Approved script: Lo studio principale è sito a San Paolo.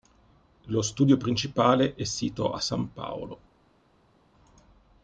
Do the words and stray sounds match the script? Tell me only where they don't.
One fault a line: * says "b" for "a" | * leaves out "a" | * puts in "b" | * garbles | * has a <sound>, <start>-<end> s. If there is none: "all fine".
all fine